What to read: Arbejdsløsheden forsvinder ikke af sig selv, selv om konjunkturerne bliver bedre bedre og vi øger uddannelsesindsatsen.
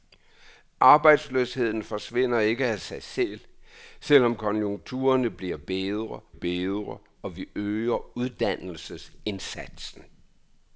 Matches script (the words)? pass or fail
pass